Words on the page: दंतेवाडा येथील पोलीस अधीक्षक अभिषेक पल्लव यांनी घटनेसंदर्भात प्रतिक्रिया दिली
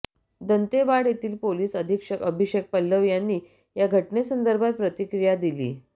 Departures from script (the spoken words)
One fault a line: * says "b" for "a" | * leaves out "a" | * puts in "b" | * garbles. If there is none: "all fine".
* puts in "या"